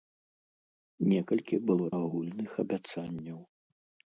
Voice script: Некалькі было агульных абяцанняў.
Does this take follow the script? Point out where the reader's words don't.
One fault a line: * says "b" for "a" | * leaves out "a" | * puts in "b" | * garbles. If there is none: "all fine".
all fine